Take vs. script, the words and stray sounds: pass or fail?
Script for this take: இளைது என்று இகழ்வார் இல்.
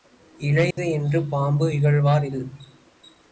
fail